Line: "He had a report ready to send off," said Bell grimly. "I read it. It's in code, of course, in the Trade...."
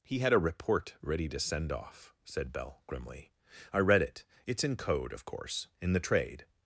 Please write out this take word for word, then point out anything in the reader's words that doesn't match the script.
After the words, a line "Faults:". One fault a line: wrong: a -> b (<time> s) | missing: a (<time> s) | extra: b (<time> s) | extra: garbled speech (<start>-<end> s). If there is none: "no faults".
"He had a report ready to send off," said Bell grimly. "I read it. It's in code, of course, in the Trade...."
Faults:
no faults